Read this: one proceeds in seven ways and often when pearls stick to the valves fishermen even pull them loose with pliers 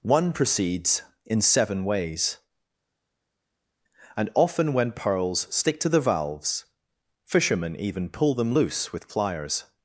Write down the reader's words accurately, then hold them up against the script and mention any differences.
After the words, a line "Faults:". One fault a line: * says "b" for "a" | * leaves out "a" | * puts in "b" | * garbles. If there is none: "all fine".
one proceeds in seven ways and often when pearls stick to the valves fishermen even pull them loose with pliers
Faults:
all fine